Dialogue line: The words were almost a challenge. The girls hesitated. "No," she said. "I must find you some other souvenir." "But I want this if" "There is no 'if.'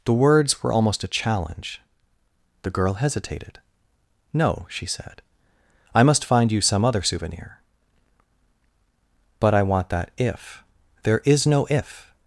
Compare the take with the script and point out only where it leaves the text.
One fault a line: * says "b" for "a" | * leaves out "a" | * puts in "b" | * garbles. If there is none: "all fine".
* says "girl" for "girls"
* says "that" for "this"